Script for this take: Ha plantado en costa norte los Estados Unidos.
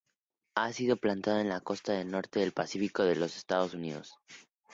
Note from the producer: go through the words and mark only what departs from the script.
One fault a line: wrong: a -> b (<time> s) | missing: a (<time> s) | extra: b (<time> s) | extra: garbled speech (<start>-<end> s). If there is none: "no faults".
extra: sido (0.7 s)
extra: la (1.5 s)
extra: del Pacífico de (2.4 s)